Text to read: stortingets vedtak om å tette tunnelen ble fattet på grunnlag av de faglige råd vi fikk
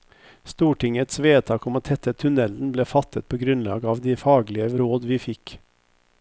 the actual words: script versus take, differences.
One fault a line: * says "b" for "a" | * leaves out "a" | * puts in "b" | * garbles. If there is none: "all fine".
all fine